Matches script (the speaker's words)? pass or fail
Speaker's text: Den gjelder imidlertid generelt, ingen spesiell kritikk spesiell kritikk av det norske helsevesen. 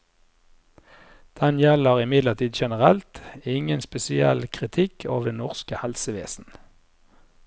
fail